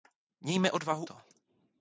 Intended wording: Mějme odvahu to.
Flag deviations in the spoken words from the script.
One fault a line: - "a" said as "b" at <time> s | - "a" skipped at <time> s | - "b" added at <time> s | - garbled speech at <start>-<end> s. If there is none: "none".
none